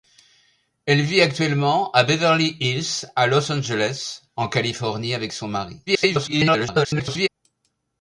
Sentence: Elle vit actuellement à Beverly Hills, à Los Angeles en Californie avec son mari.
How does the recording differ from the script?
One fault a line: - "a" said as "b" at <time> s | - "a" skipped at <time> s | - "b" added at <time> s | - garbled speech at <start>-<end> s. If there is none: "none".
- garbled speech at 5.9-7.3 s